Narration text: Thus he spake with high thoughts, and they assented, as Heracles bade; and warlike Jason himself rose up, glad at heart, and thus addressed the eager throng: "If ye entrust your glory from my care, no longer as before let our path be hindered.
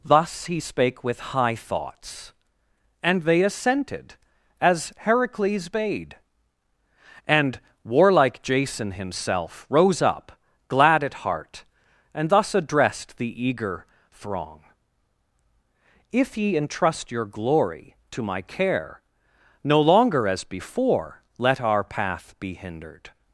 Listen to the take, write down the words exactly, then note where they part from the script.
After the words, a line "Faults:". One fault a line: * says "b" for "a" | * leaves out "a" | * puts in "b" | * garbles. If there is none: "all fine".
Thus he spake with high thoughts, and they assented, as Heracles bade; and warlike Jason himself rose up, glad at heart, and thus addressed the eager throng: "If ye entrust your glory to my care, no longer as before let our path be hindered.
Faults:
* says "to" for "from"